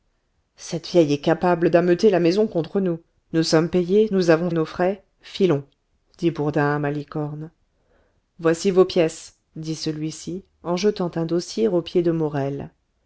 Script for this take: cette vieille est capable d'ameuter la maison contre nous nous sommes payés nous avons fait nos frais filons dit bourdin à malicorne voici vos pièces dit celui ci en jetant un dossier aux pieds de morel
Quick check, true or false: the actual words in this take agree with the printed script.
false